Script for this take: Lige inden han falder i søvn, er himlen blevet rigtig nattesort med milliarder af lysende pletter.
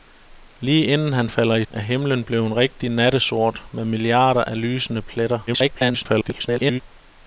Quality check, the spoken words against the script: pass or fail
fail